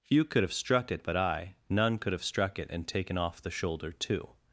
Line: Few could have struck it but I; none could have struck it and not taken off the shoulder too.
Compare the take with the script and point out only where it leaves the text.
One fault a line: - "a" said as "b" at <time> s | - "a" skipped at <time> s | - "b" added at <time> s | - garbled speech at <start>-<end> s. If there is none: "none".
- "not" skipped at 2.9 s